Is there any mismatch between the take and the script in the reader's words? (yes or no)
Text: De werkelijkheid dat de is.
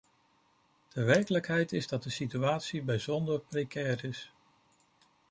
yes